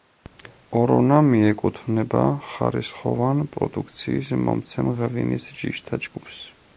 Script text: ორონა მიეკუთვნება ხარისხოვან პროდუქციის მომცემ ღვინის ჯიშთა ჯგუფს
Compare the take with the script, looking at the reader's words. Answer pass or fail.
pass